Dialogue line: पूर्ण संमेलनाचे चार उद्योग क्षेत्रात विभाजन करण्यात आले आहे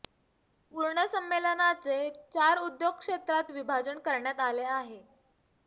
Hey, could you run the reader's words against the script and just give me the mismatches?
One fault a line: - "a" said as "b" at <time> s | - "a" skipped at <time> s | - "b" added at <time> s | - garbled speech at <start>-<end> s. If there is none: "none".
none